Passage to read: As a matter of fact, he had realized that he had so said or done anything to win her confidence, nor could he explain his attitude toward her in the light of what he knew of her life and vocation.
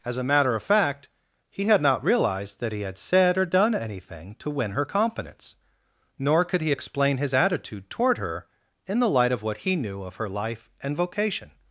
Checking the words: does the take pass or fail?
fail